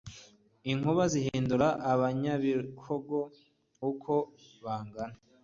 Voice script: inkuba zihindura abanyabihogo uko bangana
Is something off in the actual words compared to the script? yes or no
no